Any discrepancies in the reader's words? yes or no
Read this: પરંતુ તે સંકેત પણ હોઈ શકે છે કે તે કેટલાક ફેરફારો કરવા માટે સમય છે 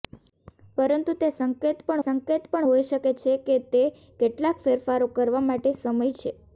yes